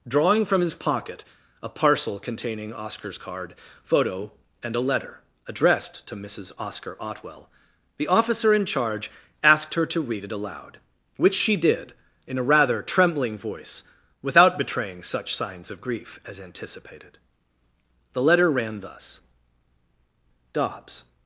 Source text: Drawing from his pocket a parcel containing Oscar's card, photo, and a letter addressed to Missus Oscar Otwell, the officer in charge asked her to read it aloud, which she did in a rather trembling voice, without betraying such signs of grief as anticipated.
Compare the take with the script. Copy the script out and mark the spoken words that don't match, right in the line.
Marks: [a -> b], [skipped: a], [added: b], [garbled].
Drawing from his pocket a parcel containing Oscar's card, photo, and a letter addressed to Missus Oscar Otwell, the officer in charge asked her to read it aloud, which she did in a rather trembling voice, without betraying such signs of grief as anticipated. [added: The letter ran thus Dobbs]